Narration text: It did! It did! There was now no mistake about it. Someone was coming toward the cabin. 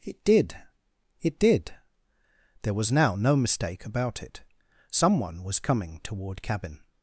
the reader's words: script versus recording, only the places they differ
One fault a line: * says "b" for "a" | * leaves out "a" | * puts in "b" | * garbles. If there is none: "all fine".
* leaves out "the"